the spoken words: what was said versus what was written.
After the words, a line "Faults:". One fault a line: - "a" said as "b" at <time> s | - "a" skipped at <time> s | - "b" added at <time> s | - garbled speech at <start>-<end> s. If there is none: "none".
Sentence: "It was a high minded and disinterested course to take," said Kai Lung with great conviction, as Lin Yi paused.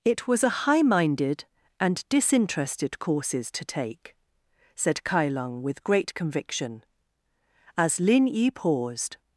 "It was a high minded and disinterested courses to take," said Kai Lung with great conviction, as Lin Yi paused.
Faults:
- "course" said as "courses" at 3.0 s